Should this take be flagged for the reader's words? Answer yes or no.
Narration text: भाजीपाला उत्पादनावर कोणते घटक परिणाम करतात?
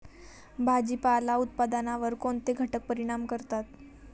no